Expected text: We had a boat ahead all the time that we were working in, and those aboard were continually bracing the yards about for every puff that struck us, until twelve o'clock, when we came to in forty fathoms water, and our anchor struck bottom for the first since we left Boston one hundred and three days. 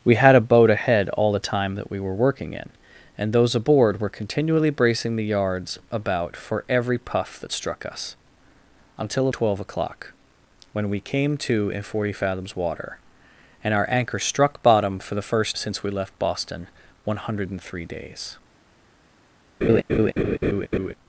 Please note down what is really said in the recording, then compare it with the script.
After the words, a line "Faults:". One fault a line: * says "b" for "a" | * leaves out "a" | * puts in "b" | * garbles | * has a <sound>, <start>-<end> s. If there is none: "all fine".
We had a boat ahead all the time that we were working in, and those aboard were continually bracing the yards about for every puff that struck us, until twelve o'clock, when we came to in forty fathoms water, and our anchor struck bottom for the first since we left Boston one hundred and three days.
Faults:
* has a laugh, 19.6-20.9 s